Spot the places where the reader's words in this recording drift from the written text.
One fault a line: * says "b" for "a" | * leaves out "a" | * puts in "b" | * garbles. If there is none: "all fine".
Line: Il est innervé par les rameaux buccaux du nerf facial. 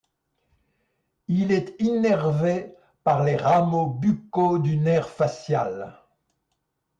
all fine